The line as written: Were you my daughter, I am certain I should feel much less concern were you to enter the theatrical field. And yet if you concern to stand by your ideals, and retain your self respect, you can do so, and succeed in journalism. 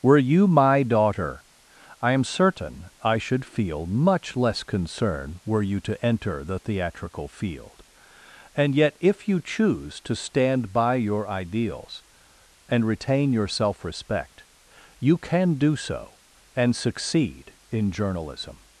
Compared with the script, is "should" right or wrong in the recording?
right